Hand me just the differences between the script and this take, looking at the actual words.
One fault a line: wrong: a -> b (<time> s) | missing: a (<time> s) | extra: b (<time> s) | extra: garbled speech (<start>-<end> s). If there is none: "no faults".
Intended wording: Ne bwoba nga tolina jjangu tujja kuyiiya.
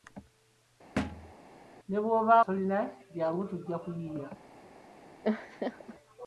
missing: nga (2.3 s)